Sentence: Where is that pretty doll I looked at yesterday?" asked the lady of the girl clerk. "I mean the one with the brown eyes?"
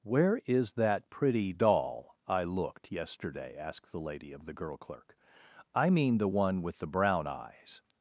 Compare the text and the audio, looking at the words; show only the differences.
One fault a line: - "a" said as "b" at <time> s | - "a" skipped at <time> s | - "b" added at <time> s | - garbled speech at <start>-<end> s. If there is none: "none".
- "at" skipped at 2.9 s